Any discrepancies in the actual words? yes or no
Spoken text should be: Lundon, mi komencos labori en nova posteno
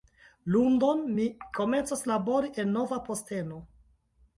no